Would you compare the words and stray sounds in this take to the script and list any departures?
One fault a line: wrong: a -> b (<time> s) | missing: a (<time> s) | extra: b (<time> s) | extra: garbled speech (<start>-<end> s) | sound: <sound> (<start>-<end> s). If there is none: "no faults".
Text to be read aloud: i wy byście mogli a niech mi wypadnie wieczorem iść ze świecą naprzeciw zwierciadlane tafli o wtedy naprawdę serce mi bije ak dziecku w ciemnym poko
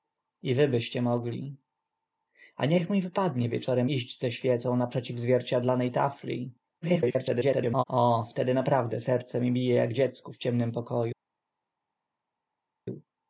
extra: garbled speech (6.8-7.8 s)